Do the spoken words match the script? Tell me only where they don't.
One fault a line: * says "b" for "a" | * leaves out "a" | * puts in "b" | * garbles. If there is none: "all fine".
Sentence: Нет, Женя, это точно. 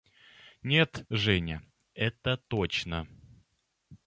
all fine